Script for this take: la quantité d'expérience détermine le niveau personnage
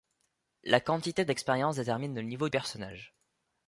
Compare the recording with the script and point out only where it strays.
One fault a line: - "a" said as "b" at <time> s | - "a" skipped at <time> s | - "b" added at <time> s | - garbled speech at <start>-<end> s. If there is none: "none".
none